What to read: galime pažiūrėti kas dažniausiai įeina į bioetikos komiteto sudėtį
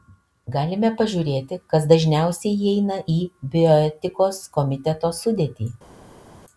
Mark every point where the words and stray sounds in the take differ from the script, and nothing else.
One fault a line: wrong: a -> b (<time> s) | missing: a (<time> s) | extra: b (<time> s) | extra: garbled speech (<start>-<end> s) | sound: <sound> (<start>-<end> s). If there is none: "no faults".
no faults